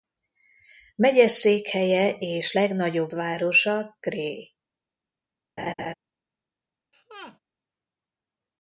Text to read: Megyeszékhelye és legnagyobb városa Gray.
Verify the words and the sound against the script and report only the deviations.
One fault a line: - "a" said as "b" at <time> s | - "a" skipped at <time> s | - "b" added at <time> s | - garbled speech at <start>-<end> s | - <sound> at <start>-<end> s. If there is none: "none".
- laugh at 5.6-5.9 s
- laugh at 6.9-7.4 s